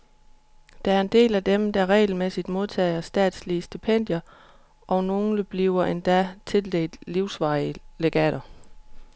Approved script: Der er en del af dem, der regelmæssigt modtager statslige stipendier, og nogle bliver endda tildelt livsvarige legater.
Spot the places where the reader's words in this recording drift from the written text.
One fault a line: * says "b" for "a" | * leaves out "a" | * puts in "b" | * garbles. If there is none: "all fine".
all fine